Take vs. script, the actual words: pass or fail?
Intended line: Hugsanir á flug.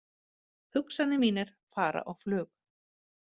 fail